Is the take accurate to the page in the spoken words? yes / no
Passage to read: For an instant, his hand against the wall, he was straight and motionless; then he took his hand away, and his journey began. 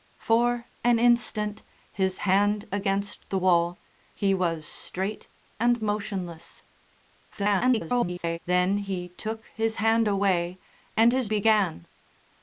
no